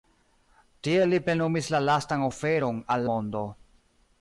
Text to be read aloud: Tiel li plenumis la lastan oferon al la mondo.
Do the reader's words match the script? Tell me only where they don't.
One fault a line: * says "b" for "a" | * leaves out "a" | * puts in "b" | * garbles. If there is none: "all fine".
* leaves out "la"